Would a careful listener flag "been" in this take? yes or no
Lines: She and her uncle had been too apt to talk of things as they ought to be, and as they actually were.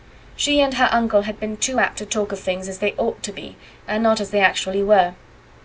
no